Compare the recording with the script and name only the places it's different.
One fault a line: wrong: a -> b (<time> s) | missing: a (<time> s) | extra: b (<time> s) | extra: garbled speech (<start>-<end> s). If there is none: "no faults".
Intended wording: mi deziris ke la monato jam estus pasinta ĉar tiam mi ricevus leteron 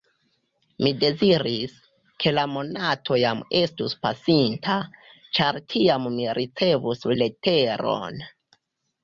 no faults